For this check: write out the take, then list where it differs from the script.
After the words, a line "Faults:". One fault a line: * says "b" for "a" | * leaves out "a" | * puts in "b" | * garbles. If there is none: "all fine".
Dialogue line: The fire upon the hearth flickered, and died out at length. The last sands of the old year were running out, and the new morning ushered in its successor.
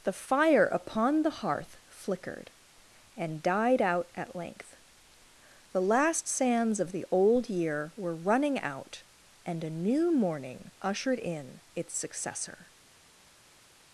The fire upon the hearth flickered, and died out at length. The last sands of the old year were running out, and a new morning ushered in its successor.
Faults:
* says "a" for "the"